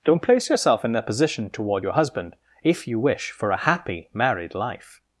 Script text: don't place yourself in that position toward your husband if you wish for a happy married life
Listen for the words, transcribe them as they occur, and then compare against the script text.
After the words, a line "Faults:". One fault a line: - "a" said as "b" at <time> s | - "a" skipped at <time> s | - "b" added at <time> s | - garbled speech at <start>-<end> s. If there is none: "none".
don't place yourself in that position toward your husband if you wish for a happy married life
Faults:
none